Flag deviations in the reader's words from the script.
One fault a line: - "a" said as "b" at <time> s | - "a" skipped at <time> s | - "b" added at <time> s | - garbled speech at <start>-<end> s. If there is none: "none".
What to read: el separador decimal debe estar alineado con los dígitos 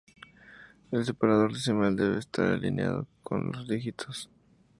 none